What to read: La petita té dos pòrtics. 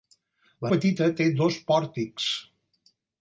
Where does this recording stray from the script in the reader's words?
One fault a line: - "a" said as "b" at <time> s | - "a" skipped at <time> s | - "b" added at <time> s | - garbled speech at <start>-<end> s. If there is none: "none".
none